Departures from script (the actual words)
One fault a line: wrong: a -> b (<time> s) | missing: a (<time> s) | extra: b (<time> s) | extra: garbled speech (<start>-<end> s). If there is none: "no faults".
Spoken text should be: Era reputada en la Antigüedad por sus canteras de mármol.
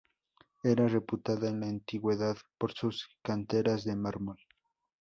no faults